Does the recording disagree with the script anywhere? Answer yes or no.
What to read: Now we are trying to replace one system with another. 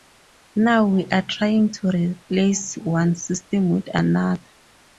no